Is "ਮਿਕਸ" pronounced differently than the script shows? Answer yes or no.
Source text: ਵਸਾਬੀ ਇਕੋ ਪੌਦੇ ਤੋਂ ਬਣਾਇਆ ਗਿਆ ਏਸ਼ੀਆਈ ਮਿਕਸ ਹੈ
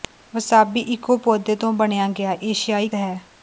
yes